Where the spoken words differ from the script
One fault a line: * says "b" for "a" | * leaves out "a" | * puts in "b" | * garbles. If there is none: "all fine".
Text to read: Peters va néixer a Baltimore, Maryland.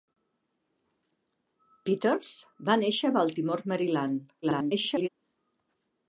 * garbles